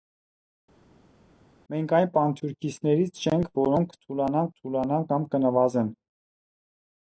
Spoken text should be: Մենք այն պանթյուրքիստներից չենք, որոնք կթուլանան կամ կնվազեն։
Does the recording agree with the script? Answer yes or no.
no